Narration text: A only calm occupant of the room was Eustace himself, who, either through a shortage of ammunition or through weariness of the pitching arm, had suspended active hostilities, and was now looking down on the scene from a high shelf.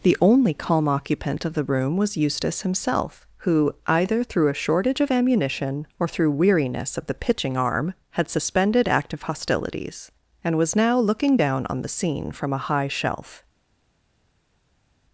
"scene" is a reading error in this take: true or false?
false